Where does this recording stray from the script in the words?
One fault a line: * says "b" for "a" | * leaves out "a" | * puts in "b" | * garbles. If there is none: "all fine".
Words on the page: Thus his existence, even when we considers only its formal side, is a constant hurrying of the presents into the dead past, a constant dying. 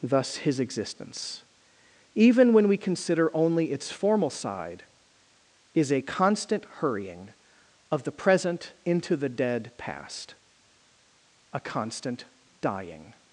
* says "consider" for "considers"
* says "present" for "presents"